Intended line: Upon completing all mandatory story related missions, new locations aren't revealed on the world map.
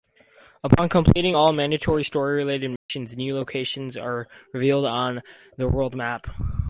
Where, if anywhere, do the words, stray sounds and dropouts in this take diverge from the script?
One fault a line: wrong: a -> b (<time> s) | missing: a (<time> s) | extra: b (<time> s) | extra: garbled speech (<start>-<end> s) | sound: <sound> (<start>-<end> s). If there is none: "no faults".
sound: dropout (2.8-2.9 s)
wrong: aren't -> are (4.0 s)